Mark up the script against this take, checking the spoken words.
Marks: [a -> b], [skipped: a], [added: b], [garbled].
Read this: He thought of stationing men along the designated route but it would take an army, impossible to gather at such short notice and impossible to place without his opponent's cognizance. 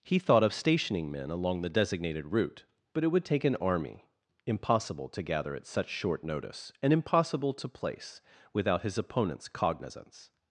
He thought of stationing men along the designated route but it would take an army, impossible to gather at such short notice and impossible to place without his opponent's cognizance.